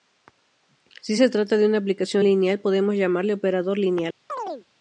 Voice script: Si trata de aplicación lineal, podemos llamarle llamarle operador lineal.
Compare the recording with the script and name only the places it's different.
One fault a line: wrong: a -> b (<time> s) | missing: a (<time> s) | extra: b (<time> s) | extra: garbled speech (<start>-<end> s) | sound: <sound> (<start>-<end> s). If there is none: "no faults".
extra: se (1.1 s)
extra: una (1.7 s)
missing: llamarle (3.3 s)
sound: chirp (4.3-4.7 s)